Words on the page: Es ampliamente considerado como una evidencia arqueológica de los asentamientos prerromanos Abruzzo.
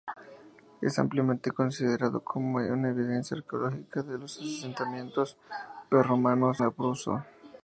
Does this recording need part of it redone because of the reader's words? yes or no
no